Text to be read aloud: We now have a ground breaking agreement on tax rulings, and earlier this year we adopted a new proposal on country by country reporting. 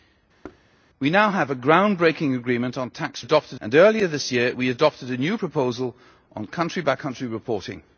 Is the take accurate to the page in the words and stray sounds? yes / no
no